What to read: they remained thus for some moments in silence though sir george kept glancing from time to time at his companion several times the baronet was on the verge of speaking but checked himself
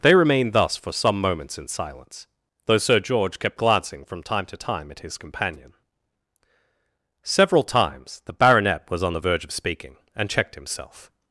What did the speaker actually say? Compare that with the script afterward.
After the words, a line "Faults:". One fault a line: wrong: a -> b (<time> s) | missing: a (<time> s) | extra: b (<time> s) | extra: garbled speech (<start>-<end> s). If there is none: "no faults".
they remained thus for some moments in silence though sir george kept glancing from time to time at his companion several times the baronet was on the verge of speaking and checked himself
Faults:
wrong: but -> and (10.1 s)